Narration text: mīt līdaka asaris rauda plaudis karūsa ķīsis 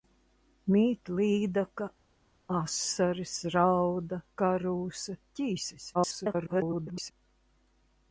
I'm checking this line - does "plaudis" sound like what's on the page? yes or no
no